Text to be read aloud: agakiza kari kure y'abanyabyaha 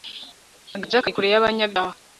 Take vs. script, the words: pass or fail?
pass